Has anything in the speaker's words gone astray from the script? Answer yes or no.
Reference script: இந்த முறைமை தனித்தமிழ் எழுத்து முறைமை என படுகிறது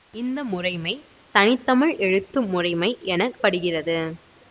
no